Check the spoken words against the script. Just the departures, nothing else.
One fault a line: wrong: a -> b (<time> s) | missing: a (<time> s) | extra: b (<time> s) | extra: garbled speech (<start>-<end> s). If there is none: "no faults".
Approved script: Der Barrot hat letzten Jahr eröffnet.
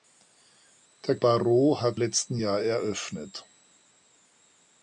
no faults